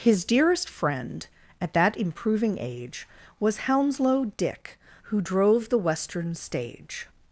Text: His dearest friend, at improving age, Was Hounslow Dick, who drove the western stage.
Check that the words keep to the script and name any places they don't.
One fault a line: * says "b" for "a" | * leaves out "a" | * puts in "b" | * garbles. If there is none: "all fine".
* puts in "that"